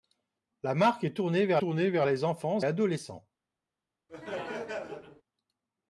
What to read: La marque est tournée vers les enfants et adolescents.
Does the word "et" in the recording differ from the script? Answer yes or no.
yes